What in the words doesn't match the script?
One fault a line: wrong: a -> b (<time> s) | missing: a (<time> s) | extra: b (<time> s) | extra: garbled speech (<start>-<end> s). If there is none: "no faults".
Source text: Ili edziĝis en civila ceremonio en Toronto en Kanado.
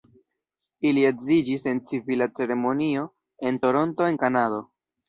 no faults